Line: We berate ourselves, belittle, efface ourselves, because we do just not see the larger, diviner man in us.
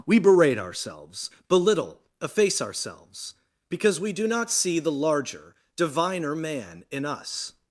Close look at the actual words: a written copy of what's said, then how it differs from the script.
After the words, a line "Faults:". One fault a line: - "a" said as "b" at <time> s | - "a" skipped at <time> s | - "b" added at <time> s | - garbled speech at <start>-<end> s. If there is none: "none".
We berate ourselves, belittle, efface ourselves, because we do not see the larger, diviner man in us.
Faults:
- "just" skipped at 4.3 s